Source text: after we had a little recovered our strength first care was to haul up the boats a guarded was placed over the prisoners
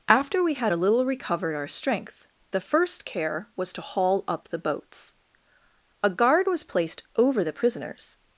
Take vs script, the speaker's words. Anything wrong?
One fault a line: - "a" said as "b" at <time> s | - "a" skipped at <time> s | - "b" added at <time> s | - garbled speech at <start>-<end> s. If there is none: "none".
- "the" added at 2.5 s
- "guarded" said as "guard" at 6.1 s